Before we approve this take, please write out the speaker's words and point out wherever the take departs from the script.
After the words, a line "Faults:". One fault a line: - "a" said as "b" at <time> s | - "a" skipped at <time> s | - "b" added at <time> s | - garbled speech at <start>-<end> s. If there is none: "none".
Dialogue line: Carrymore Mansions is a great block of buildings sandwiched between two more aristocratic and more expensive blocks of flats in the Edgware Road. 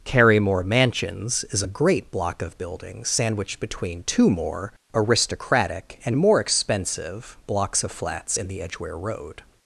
Carrymore Mansions is a great block of buildings sandwiched between two more aristocratic and more expensive blocks of flats in the Edgware Road.
Faults:
none